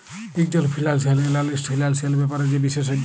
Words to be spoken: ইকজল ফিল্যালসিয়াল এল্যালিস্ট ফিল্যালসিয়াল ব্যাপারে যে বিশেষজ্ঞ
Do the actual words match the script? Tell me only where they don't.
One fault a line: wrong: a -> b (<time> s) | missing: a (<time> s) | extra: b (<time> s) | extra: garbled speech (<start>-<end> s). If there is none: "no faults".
no faults